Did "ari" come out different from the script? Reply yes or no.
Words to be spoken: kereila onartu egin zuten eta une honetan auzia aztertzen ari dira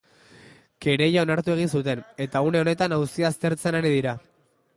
no